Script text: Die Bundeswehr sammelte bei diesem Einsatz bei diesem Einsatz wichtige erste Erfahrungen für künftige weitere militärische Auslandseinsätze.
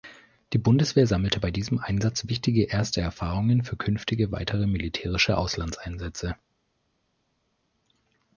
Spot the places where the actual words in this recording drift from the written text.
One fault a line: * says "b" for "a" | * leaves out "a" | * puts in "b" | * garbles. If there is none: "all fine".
* leaves out "bei diesem Einsatz"